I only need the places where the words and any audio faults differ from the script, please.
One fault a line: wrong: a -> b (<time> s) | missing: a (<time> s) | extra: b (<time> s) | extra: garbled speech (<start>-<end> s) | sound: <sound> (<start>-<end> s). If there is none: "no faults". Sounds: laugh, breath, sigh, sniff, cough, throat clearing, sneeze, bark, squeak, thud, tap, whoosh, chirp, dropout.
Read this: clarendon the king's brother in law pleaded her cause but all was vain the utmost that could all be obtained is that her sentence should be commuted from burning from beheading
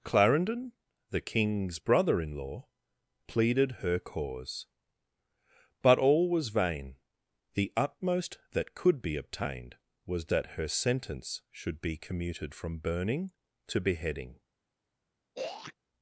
missing: all (9.0 s)
wrong: is -> was (10.1 s)
wrong: from -> to (13.7 s)
sound: throat clearing (15.4-15.7 s)